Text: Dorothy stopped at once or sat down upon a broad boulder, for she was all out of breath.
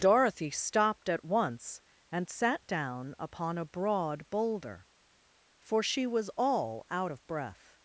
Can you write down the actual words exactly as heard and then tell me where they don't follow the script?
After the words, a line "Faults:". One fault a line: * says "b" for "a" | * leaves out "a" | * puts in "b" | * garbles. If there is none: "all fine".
Dorothy stopped at once and sat down upon a broad boulder, for she was all out of breath.
Faults:
* says "and" for "or"